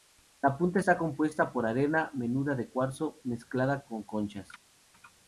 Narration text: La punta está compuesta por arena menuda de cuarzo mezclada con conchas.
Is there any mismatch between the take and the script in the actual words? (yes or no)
no